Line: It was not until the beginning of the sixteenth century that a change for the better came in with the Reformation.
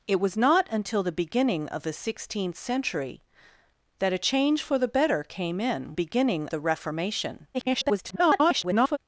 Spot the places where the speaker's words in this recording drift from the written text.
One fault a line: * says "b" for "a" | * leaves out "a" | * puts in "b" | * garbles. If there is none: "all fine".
* says "beginning" for "with"
* garbles